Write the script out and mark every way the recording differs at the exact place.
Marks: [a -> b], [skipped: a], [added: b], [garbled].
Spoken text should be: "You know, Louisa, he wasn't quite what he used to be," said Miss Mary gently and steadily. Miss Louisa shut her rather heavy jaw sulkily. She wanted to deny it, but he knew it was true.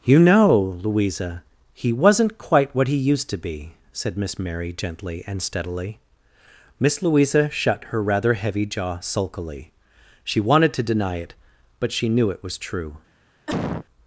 "You know, Louisa, he wasn't quite what he used to be," said Miss Mary gently and steadily. Miss Louisa shut her rather heavy jaw sulkily. She wanted to deny it, but [he -> she] knew it was true.